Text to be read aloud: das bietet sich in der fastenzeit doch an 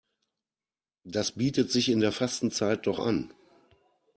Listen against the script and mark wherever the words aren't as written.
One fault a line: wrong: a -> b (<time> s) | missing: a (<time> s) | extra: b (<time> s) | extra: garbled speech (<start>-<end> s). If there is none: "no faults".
no faults